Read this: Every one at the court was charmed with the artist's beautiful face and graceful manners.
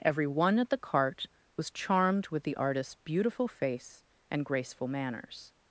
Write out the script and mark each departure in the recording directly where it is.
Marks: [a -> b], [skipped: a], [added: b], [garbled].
Every one at the [court -> cart] was charmed with the artist's beautiful face and graceful manners.